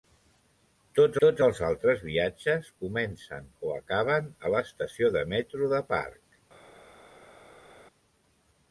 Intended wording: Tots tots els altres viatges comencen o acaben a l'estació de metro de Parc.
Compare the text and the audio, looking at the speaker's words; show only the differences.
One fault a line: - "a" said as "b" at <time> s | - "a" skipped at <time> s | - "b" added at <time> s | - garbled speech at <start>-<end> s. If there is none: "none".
none